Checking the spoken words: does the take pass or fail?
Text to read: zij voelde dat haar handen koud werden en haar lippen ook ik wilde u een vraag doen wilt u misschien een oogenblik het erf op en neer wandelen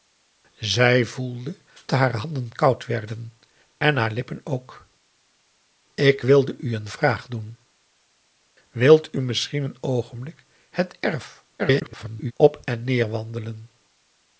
fail